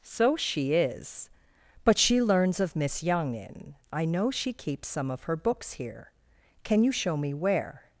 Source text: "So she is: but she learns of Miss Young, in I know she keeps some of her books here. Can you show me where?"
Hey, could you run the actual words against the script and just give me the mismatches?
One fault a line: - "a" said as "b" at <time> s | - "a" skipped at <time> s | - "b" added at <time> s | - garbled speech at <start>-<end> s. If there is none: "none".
none